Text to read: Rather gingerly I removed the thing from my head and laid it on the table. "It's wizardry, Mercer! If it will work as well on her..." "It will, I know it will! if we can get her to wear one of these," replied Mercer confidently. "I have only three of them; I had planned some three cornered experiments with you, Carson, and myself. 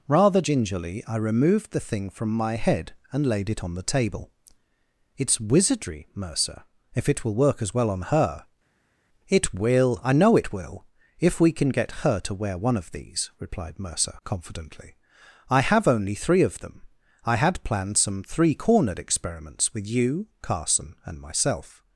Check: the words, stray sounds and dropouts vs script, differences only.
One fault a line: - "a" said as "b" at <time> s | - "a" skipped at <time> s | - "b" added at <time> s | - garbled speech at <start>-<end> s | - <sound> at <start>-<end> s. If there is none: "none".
none